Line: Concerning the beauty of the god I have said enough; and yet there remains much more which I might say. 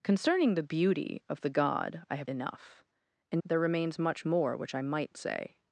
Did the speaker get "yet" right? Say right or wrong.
wrong